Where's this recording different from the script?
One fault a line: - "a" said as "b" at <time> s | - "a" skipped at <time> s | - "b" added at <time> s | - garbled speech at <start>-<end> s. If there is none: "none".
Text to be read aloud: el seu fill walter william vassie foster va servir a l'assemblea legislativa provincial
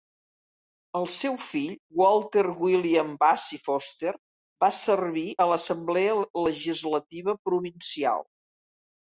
none